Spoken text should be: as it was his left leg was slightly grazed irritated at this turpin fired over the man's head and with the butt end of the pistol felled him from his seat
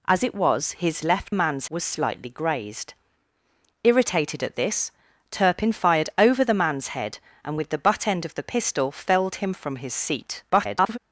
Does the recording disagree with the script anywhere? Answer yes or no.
yes